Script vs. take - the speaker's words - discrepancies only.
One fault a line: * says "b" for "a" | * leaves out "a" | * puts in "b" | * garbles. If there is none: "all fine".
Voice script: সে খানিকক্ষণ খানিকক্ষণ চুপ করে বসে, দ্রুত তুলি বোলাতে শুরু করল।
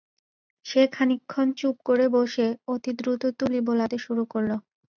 * leaves out "খানিকক্ষণ"
* puts in "অতি"